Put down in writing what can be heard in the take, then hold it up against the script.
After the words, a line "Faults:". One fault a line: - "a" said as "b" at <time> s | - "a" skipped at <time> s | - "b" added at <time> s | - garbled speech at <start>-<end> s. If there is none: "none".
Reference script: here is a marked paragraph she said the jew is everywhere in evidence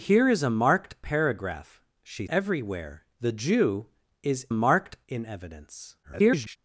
here is a marked paragraph she everywhere the jew is marked in evidence [garbled]
Faults:
- "said" said as "everywhere" at 2.3 s
- "everywhere" said as "marked" at 4.5 s
- garbled speech at 6.0-6.6 s